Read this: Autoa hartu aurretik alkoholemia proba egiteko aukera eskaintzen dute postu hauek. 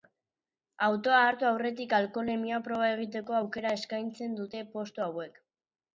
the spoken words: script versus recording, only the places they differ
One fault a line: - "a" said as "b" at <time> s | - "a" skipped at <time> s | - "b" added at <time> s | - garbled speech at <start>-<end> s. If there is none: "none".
none